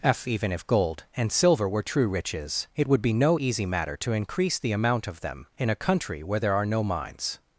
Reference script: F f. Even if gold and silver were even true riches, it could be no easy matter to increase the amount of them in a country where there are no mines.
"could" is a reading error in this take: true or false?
true